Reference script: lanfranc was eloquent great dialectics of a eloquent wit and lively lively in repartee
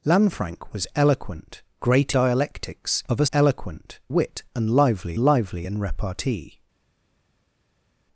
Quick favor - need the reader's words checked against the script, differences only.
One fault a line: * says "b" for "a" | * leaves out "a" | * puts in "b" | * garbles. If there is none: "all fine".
all fine